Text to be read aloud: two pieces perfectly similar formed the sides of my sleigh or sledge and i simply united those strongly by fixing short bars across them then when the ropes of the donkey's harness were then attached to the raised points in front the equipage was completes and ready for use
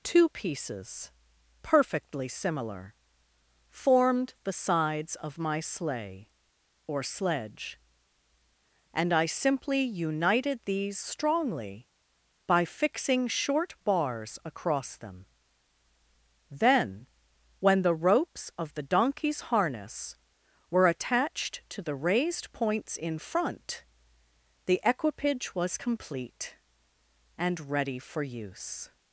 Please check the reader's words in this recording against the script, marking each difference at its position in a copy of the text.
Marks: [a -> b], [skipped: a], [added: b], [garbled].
two pieces perfectly similar formed the sides of my sleigh or sledge and i simply united [those -> these] strongly by fixing short bars across them then when the ropes of the donkey's harness were [skipped: then] attached to the raised points in front the equipage was [completes -> complete] and ready for use